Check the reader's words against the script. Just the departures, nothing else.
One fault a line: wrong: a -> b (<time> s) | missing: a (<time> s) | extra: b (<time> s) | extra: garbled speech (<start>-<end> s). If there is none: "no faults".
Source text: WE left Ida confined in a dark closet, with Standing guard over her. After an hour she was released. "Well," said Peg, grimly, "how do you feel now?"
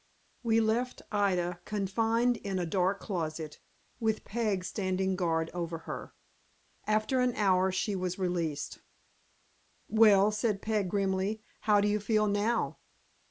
extra: Peg (4.2 s)